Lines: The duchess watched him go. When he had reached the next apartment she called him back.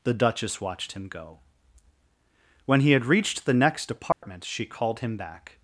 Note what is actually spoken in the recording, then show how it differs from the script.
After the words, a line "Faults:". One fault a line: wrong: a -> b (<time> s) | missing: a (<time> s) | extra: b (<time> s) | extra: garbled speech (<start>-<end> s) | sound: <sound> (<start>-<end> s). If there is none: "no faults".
The duchess watched him go. When he had reached the next apartment she called him back.
Faults:
sound: dropout (4.1-4.2 s)